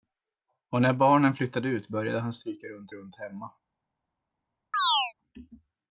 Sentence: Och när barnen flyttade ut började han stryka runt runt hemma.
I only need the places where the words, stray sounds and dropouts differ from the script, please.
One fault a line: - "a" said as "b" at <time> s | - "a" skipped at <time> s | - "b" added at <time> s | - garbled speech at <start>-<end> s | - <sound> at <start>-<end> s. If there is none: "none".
- chirp at 4.7-5.1 s